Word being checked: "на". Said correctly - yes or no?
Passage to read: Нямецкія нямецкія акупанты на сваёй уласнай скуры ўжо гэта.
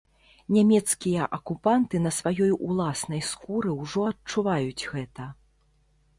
yes